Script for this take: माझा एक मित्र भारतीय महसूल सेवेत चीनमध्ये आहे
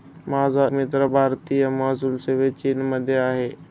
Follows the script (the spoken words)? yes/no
no